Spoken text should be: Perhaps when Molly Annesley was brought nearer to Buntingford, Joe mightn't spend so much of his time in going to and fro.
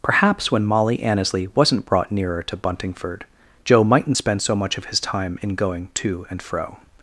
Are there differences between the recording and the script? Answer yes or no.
yes